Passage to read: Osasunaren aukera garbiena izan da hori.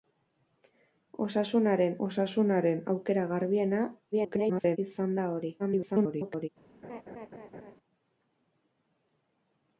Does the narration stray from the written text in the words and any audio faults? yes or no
yes